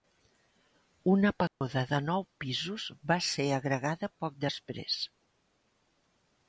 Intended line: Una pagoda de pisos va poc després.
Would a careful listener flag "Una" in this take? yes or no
no